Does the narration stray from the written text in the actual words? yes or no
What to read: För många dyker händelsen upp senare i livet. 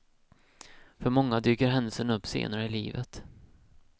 no